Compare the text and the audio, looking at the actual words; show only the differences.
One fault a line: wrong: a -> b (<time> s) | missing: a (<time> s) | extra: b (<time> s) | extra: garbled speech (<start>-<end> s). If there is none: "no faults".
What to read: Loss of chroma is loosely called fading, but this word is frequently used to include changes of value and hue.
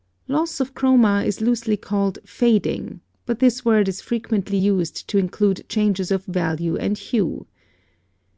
no faults